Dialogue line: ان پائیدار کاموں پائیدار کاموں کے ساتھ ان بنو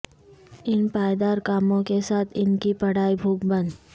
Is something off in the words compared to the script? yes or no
yes